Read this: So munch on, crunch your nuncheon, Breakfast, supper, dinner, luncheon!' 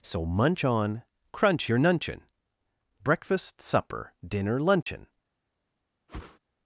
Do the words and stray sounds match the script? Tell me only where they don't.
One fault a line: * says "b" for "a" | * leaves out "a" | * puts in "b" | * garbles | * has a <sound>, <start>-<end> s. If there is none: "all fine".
* has a dropout, 4.8-4.9 s
* has a whoosh, 6.1-6.4 s